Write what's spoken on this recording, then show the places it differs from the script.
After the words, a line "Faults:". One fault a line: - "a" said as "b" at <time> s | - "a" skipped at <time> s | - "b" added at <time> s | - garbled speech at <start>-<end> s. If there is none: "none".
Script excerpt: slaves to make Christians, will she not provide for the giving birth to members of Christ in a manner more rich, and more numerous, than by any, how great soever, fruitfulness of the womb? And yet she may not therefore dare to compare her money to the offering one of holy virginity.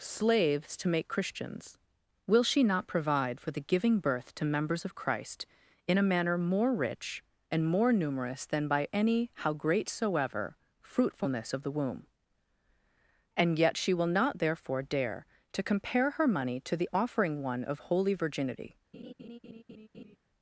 slaves to make Christians, will she not provide for the giving birth to members of Christ in a manner more rich, and more numerous, than by any, how great soever, fruitfulness of the womb? And yet she will not therefore dare to compare her money to the offering one of holy virginity.
Faults:
- "may" said as "will" at 13.9 s